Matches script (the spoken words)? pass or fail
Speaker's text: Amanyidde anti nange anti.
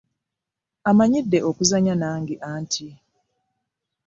fail